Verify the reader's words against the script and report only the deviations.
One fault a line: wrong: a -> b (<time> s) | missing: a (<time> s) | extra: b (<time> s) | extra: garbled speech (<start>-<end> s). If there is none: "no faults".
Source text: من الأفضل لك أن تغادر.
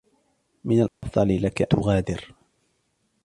missing: أن (1.7 s)